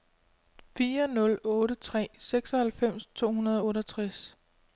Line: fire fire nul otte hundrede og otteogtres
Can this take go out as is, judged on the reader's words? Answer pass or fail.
fail